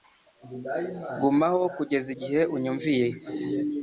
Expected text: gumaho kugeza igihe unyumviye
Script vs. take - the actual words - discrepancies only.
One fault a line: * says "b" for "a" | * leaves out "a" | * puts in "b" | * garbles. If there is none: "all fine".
all fine